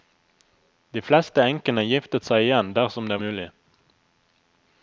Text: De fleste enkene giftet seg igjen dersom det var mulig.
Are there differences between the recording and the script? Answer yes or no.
yes